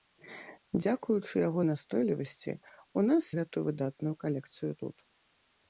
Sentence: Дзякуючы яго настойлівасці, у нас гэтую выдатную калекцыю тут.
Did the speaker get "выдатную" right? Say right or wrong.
right